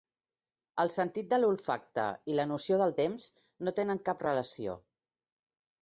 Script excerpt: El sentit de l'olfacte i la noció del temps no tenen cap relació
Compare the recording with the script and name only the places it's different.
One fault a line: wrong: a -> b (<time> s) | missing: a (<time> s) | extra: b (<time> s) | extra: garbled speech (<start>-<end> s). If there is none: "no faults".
no faults